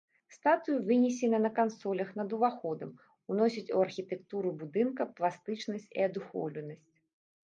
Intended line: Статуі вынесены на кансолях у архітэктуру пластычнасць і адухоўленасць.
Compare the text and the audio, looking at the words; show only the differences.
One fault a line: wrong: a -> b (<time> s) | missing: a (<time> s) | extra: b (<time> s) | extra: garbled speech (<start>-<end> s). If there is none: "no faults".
extra: над уваходам уносяць (2.2 s)
extra: будынка (4.6 s)